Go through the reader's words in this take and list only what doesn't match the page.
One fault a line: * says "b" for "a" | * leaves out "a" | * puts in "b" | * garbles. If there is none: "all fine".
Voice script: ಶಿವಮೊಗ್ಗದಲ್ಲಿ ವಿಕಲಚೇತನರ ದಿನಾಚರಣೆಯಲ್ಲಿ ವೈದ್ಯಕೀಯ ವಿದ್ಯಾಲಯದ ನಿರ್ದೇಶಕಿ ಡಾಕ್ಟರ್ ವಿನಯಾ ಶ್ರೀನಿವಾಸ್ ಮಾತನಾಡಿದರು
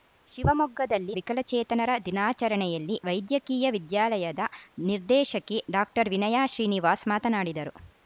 all fine